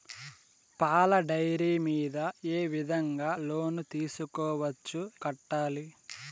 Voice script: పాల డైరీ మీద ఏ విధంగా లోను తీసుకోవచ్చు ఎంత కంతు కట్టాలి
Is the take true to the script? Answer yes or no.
no